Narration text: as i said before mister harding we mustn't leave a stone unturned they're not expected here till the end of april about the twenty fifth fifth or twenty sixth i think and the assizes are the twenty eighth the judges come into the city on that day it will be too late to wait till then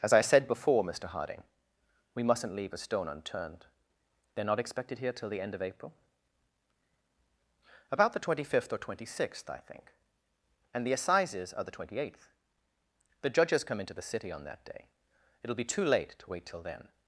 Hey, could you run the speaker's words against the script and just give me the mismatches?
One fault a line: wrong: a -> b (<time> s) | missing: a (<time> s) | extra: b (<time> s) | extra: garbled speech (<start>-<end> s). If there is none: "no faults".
missing: fifth (8.7 s)